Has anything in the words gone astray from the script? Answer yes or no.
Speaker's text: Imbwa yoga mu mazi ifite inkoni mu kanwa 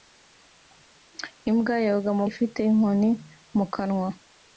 yes